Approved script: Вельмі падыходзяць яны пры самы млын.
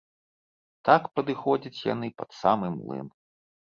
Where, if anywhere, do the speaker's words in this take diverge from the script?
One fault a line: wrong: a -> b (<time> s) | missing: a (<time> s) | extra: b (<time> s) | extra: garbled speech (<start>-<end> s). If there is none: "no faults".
wrong: Вельмі -> Так (0.9 s)
wrong: пры -> пад (2.2 s)